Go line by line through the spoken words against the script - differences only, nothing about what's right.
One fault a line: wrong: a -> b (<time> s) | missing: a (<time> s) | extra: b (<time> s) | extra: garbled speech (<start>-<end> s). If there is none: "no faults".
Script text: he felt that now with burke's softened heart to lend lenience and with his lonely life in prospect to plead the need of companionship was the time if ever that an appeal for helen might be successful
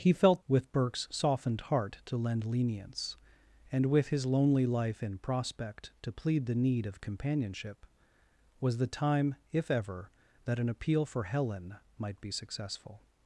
missing: that now (0.4 s)